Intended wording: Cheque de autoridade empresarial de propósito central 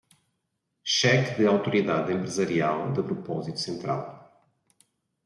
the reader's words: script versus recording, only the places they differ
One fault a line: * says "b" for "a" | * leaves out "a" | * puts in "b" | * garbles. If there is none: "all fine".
all fine